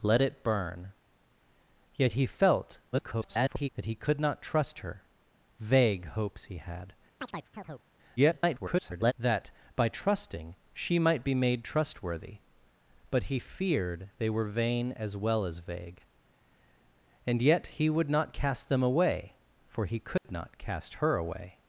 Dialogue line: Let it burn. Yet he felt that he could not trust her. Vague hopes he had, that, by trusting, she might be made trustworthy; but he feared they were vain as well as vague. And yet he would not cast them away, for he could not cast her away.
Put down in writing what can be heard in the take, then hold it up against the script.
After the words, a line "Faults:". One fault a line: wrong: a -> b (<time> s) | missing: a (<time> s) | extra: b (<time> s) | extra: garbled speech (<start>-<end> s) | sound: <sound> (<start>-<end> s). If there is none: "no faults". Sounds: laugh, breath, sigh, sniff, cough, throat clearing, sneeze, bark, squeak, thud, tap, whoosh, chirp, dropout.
Let it burn. Yet he felt [garbled] that he could not trust her. Vague hopes he had, [garbled] that, by trusting, she might be made trustworthy; but he feared they were vain as well as vague. And yet he would not cast them away, for he could not cast her away.
Faults:
extra: garbled speech (2.9-3.7 s)
sound: chirp (7.2-7.9 s)
extra: garbled speech (8.2-9.1 s)
sound: dropout (20.2-20.2 s)